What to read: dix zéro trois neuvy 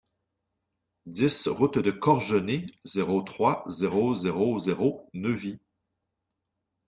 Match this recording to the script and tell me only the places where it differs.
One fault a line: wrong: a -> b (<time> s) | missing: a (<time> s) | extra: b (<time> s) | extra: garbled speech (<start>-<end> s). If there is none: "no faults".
extra: route de corgenay (1.5 s)
extra: zéro zéro zéro (3.7 s)